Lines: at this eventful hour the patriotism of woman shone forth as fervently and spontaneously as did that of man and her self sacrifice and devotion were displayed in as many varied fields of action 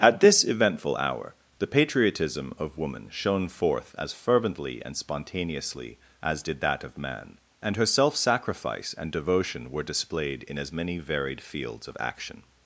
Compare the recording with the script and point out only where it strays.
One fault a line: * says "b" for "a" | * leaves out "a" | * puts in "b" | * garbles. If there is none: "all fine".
all fine